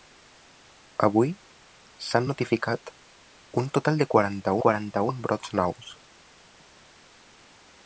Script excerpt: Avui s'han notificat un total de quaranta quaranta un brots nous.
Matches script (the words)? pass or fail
pass